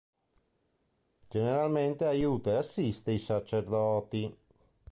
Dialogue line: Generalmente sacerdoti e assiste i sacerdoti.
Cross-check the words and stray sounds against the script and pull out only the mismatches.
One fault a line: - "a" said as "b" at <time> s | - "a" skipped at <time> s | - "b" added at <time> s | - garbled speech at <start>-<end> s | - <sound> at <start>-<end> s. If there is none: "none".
- "sacerdoti" said as "aiuta" at 2.0 s